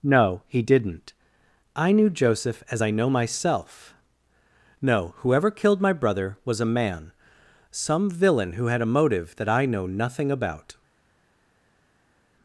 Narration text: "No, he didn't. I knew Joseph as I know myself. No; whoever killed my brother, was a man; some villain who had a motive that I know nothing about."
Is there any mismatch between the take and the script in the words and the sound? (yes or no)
no